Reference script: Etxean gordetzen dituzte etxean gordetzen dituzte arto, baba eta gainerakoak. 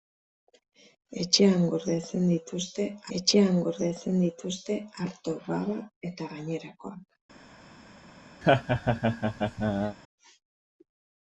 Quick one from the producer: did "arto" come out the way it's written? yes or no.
yes